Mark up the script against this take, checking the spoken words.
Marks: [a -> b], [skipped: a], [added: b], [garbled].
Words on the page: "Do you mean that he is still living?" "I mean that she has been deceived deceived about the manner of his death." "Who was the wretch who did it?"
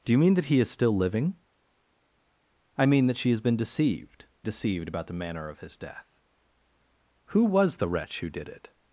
"Do you mean that he is still living?" "I mean that she has been deceived deceived about the manner of his death." "Who was the wretch who did it?"